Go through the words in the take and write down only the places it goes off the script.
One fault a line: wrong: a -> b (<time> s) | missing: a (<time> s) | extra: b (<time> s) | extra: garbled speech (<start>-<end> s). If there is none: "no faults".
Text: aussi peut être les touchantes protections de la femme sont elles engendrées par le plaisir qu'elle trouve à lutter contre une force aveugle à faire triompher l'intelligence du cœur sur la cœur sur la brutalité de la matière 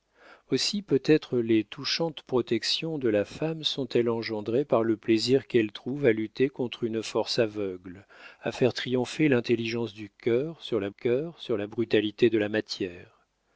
no faults